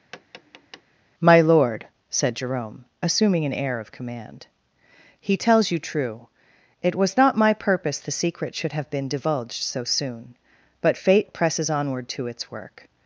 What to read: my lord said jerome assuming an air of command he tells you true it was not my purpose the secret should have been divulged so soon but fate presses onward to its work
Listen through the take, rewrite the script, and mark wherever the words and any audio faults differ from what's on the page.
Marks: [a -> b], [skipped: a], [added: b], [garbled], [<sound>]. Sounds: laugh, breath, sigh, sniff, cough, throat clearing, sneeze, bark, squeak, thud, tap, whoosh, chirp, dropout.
[tap] my lord said jerome assuming an air of command he tells you true it was not my purpose the secret should have been divulged so soon but fate presses onward to its work